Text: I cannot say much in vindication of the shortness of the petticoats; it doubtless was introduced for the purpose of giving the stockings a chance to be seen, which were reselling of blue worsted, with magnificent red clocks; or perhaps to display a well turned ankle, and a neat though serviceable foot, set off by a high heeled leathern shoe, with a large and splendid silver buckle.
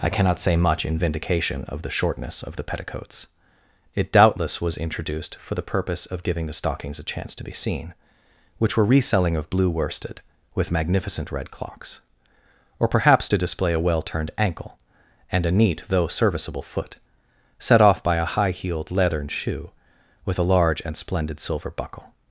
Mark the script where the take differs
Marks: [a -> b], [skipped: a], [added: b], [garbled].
I cannot say much in vindication of the shortness of the petticoats; it doubtless was introduced for the purpose of giving the stockings a chance to be seen, which were reselling of blue worsted, with magnificent red clocks; or perhaps to display a well turned ankle, and a neat though serviceable foot, set off by a high heeled leathern shoe, with a large and splendid silver buckle.